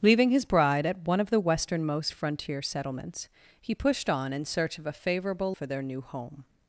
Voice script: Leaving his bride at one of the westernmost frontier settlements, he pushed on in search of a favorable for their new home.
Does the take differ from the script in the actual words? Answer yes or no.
no